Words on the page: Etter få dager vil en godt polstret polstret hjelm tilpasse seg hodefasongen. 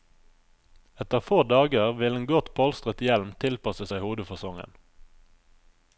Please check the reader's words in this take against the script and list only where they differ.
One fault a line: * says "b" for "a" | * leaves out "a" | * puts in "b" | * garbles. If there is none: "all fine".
* leaves out "polstret"